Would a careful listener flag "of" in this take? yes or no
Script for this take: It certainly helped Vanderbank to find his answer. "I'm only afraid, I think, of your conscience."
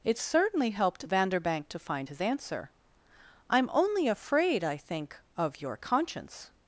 no